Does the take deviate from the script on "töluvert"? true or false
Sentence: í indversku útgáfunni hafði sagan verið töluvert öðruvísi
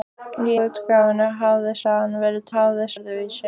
true